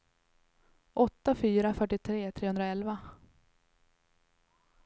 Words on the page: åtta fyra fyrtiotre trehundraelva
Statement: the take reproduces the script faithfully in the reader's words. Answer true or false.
true